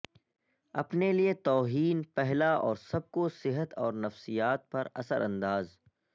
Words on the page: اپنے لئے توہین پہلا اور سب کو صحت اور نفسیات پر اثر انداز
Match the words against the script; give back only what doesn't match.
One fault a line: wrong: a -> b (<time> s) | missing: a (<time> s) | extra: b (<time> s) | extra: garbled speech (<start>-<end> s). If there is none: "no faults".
no faults